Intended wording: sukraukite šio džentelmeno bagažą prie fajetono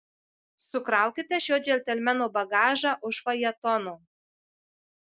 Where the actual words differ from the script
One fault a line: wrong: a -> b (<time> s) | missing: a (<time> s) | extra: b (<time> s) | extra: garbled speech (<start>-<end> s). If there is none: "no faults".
wrong: prie -> už (3.1 s)